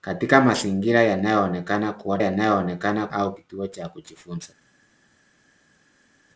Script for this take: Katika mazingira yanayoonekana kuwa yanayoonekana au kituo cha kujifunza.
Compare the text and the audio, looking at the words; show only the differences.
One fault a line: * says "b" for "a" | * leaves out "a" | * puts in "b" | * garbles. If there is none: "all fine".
all fine